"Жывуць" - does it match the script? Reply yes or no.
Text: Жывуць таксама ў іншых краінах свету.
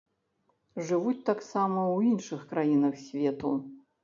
yes